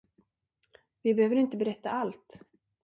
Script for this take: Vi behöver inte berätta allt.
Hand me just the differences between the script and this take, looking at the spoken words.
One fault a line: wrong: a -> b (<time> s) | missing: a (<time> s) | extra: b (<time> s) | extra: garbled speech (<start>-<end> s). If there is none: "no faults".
no faults